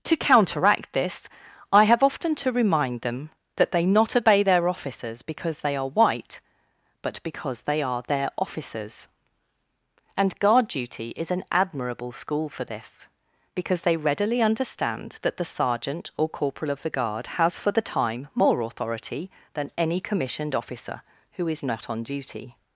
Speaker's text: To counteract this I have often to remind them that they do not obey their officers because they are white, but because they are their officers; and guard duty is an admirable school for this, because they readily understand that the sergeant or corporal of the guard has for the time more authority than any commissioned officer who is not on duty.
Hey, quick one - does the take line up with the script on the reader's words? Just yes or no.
no